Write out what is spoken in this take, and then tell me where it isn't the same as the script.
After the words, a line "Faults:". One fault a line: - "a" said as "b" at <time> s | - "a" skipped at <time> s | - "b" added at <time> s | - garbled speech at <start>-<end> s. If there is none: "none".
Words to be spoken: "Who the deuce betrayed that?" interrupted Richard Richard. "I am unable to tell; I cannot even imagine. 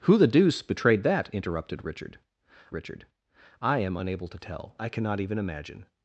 "Who the deuce betrayed that?" interrupted Richard Richard. "I am unable to tell; I cannot even imagine.
Faults:
none